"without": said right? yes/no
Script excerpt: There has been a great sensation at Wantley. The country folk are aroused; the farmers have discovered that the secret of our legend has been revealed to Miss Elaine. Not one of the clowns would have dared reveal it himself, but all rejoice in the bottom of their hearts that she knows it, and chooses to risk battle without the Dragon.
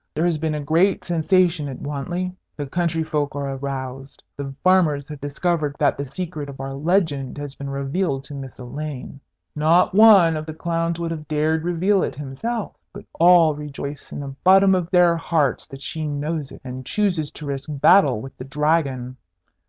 no